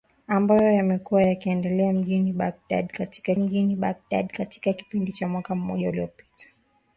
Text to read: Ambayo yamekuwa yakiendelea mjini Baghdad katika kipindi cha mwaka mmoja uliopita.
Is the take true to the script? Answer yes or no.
no